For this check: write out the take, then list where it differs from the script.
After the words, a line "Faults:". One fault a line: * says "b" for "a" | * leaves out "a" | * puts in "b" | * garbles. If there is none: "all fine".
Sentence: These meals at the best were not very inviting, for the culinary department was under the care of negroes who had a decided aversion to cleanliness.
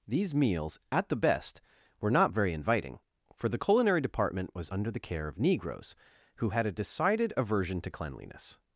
These meals at the best were not very inviting, for the culinary department was under the care of negroes who had a decided aversion to cleanliness.
Faults:
all fine